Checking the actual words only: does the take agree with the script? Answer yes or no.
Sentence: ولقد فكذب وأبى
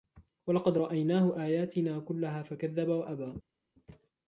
no